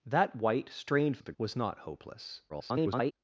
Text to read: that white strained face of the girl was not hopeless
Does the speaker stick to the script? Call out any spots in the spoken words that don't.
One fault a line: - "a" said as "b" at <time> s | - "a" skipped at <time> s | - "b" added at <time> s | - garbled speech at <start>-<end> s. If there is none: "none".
- "face" skipped at 1.2 s
- "girl" skipped at 1.3 s
- garbled speech at 2.5-3.1 s